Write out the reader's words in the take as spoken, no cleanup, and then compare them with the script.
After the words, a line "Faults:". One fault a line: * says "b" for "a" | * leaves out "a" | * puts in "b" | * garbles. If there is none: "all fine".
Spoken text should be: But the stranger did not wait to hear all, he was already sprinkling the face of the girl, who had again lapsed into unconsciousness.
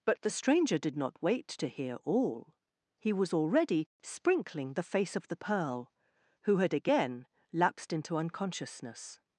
But the stranger did not wait to hear all, he was already sprinkling the face of the pearl, who had again lapsed into unconsciousness.
Faults:
* says "pearl" for "girl"